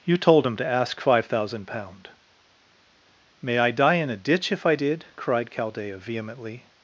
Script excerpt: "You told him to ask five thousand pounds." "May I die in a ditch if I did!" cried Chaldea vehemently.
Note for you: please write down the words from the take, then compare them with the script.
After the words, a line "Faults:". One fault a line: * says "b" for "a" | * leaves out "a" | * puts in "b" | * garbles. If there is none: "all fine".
"You told him to ask five thousand pound." "May I die in a ditch if I did!" cried Chaldea vehemently.
Faults:
* says "pound" for "pounds"